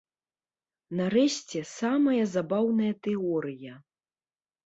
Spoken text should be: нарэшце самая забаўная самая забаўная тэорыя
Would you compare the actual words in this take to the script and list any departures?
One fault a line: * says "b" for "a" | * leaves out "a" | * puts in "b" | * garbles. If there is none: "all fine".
* leaves out "самая забаўная"